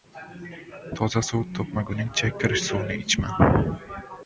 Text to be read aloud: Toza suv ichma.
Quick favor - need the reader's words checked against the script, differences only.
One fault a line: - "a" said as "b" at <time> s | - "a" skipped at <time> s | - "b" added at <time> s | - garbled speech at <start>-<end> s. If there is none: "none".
- "topmaguningcha kir suvni" added at 1.6 s